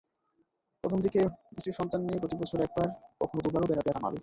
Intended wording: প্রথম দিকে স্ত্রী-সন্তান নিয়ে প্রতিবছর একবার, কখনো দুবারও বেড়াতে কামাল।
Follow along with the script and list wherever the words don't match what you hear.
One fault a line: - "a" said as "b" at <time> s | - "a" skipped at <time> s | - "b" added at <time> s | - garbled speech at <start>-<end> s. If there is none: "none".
none